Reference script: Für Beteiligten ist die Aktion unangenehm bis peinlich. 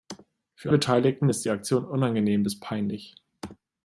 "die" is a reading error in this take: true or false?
false